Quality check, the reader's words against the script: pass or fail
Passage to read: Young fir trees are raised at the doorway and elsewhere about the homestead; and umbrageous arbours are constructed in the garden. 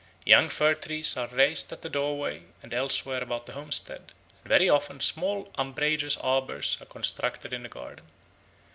fail